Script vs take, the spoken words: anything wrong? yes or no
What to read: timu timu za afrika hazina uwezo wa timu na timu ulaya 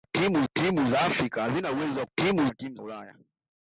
no